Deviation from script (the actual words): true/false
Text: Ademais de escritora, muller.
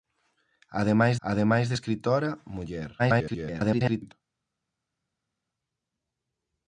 true